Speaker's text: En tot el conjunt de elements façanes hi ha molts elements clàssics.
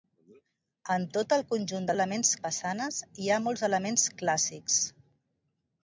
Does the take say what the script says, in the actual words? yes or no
yes